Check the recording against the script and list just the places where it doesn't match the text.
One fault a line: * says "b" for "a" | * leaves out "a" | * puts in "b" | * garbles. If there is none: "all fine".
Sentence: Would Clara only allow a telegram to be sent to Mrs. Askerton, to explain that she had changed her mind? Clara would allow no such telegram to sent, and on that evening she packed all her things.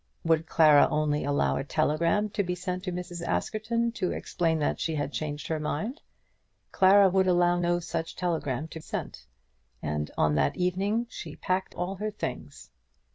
all fine